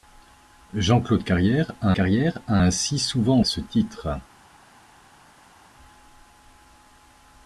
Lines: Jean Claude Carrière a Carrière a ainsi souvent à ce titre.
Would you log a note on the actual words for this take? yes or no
no